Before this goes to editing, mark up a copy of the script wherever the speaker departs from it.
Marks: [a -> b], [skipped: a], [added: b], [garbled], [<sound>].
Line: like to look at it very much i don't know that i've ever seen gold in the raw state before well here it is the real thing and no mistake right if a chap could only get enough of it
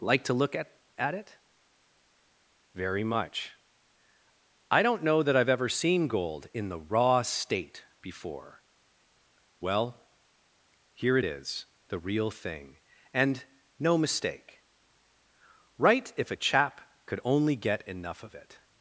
like to look at [added: at] it very much i don't know that i've ever seen gold in the raw state before well here it is the real thing and no mistake right if a chap could only get enough of it